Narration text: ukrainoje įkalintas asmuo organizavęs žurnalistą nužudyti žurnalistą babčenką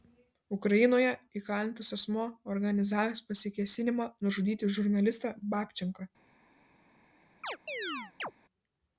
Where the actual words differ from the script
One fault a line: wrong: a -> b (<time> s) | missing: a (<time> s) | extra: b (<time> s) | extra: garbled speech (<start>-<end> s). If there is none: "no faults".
wrong: žurnalistą -> pasikėsinimą (3.3 s)